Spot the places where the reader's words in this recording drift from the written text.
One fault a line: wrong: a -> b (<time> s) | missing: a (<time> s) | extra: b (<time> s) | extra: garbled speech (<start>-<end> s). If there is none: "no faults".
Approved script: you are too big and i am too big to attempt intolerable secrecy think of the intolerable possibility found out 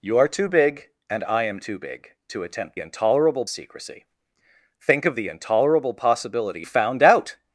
no faults